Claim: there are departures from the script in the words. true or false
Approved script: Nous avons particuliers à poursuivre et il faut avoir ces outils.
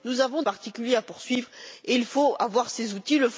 false